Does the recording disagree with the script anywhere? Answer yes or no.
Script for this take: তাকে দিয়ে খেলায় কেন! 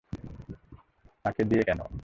yes